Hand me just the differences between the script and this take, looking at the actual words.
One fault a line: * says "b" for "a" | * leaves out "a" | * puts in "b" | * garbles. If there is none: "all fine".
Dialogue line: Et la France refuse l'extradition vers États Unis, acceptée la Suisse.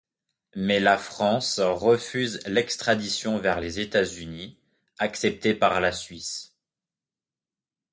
* says "Mais" for "Et"
* puts in "les"
* puts in "par"